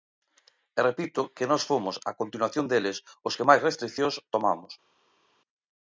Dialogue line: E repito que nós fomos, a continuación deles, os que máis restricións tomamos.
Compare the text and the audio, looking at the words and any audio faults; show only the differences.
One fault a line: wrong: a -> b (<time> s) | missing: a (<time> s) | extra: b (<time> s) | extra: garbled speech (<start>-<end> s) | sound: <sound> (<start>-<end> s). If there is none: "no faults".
no faults